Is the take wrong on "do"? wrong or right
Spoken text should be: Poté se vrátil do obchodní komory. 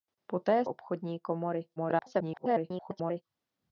wrong